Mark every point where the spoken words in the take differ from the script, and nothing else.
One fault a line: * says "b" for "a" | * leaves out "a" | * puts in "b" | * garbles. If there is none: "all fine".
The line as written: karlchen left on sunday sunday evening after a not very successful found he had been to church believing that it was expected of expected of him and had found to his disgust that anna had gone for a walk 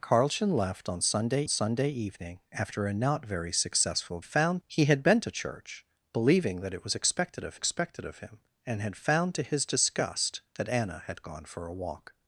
all fine